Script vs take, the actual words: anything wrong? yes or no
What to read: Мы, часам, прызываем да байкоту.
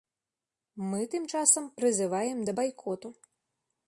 yes